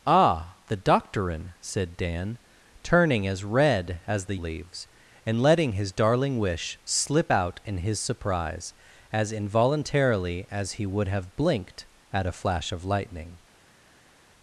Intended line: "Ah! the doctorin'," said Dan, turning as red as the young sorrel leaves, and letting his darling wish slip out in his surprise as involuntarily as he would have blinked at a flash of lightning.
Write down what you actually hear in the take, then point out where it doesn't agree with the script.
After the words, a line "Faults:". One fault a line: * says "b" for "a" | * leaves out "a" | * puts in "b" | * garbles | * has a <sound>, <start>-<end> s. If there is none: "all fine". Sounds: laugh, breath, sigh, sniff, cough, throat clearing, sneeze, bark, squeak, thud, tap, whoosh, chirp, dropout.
"Ah! the doctorin'," said Dan, turning as red as the leaves, and letting his darling wish slip out in his surprise as involuntarily as he would have blinked at a flash of lightning.
Faults:
* leaves out "young sorrel"